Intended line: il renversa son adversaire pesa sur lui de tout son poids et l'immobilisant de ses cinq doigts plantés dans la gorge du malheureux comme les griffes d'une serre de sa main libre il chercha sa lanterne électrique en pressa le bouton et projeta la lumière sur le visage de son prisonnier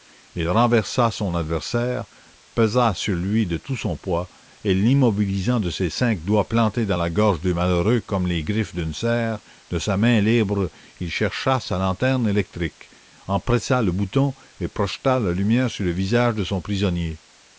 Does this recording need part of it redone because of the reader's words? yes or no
no